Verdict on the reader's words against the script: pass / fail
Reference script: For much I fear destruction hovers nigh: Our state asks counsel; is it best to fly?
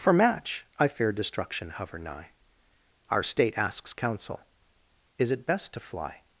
fail